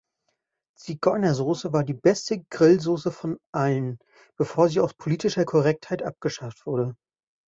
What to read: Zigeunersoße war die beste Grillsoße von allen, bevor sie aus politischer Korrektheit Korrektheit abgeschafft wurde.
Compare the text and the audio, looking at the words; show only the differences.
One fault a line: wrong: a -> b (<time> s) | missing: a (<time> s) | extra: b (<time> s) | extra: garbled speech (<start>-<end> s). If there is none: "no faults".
missing: Korrektheit (6.0 s)